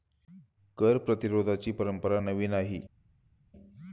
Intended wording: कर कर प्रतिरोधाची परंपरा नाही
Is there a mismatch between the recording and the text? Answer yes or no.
yes